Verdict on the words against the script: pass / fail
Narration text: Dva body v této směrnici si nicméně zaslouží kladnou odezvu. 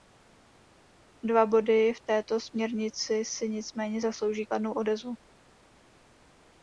pass